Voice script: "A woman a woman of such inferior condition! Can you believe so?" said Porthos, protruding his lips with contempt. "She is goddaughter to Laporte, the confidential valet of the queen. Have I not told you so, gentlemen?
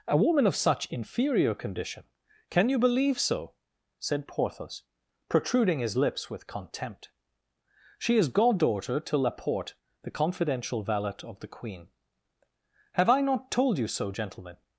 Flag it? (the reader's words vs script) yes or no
yes